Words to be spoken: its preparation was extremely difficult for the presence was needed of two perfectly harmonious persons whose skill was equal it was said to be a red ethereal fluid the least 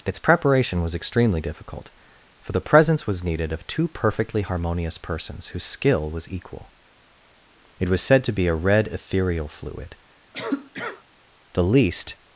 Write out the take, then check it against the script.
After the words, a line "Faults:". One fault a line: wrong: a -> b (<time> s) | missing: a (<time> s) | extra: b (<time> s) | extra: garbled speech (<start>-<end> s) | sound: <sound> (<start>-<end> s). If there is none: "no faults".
its preparation was extremely difficult for the presence was needed of two perfectly harmonious persons whose skill was equal it was said to be a red ethereal fluid the least
Faults:
sound: cough (10.3-11.0 s)